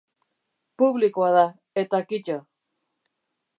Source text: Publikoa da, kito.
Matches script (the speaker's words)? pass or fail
fail